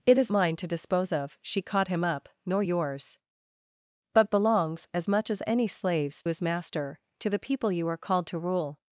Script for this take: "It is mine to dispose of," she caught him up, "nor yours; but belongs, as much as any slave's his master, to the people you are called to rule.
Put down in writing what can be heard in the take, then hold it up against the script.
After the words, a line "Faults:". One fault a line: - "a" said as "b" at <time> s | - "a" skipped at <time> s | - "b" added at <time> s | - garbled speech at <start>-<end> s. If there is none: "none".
"It is mine to dispose of," she caught him up, "nor yours; but belongs, as much as any slave's his master, to the people you are called to rule.
Faults:
none